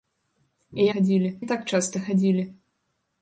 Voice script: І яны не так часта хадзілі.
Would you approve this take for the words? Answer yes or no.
no